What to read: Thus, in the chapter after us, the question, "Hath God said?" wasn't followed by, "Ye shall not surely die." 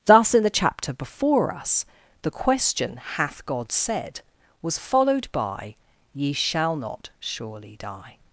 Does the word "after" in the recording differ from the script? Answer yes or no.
yes